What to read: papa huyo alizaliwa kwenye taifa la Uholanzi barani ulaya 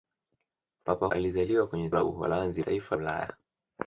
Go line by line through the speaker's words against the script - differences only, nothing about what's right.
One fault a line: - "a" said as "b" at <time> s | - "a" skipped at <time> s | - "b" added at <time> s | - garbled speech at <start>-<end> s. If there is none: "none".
- "huyo" skipped at 1.1 s
- "taifa" skipped at 1.9 s
- "barani" said as "taifa" at 2.6 s